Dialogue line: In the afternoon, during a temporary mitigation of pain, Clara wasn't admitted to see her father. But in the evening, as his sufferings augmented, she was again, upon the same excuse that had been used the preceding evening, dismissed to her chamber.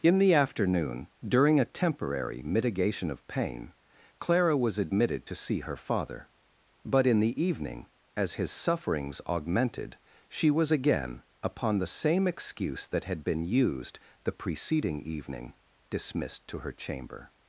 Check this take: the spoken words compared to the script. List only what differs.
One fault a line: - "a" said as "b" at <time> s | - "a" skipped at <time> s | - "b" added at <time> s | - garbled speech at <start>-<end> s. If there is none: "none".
- "wasn't" said as "was" at 4.5 s